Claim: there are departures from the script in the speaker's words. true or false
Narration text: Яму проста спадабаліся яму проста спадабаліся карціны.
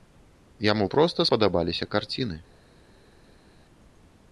true